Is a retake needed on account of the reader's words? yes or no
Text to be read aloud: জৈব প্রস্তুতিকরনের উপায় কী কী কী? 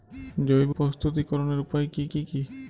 no